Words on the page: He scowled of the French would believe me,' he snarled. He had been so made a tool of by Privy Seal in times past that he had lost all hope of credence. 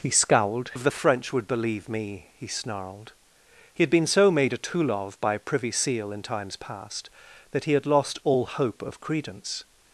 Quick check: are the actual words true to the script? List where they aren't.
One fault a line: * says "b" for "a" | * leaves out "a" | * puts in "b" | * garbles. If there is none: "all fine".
all fine